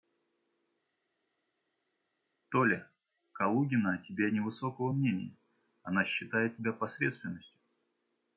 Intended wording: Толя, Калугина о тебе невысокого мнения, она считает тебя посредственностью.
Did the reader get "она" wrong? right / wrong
right